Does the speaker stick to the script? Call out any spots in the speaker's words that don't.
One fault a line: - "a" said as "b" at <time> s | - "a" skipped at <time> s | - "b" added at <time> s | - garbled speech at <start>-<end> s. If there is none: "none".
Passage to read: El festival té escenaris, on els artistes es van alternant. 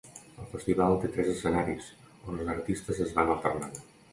- "tres" added at 1.2 s